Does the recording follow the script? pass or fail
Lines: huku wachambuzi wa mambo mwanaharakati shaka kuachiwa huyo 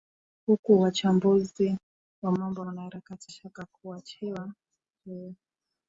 pass